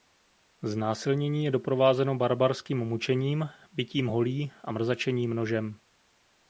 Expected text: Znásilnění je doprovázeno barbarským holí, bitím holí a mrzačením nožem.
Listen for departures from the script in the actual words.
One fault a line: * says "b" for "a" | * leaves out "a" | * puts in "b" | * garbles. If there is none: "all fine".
* says "mučením" for "holí"